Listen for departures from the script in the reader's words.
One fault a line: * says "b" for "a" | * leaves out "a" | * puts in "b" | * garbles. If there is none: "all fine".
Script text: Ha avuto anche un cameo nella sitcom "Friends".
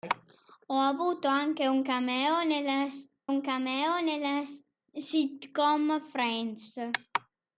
* puts in "un cameo nella"